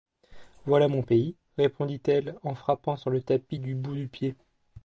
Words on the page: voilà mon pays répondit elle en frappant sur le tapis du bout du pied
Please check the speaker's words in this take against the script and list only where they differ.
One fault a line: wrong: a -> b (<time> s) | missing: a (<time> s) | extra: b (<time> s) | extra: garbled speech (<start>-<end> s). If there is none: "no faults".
no faults